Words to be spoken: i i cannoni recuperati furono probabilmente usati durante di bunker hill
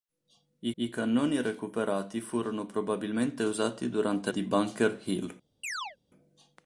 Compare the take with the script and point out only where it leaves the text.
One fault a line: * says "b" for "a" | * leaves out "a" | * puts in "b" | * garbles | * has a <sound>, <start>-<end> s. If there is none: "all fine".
* has a chirp, 5.6-6.0 s